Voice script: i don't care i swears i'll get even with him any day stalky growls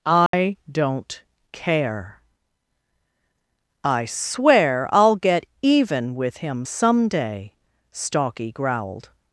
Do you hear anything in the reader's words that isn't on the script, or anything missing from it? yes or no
yes